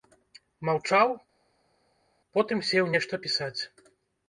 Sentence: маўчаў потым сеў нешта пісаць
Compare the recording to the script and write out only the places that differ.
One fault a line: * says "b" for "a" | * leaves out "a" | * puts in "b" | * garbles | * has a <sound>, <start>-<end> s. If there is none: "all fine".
all fine